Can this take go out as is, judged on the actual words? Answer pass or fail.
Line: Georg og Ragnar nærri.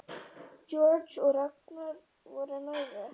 fail